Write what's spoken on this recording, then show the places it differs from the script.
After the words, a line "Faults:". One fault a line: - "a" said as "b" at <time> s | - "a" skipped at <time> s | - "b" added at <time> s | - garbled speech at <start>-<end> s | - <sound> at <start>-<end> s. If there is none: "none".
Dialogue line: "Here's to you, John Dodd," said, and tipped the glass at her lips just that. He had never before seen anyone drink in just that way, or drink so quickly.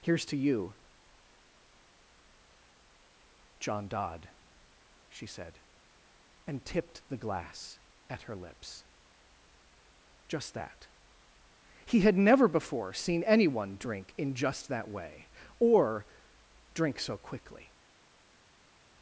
"Here's to you, John Dodd," she said, and tipped the glass at her lips just that. He had never before seen anyone drink in just that way, or drink so quickly.
Faults:
- "she" added at 5.1 s